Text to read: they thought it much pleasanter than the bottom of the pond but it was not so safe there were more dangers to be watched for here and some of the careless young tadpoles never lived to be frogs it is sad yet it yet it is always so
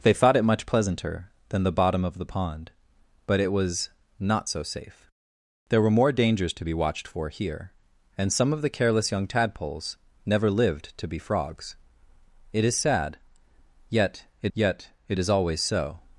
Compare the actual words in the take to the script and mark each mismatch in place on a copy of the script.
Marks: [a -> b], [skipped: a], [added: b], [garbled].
they thought it much pleasanter than the bottom of the pond but it was not so safe there were more dangers to be watched for here and some of the careless young tadpoles never lived to be frogs it is sad yet it yet it is always so